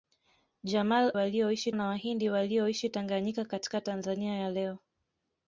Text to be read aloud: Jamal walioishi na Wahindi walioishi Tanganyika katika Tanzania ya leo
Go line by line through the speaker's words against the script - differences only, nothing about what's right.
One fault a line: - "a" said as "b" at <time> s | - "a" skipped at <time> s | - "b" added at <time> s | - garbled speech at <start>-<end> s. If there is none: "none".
none